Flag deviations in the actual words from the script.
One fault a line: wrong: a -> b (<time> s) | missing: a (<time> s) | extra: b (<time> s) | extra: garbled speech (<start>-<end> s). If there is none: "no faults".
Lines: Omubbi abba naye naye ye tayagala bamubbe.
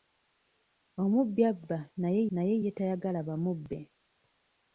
no faults